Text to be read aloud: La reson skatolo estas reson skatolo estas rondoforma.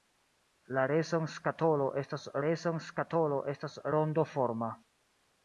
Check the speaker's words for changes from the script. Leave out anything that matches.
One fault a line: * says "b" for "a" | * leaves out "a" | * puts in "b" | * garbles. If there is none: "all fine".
all fine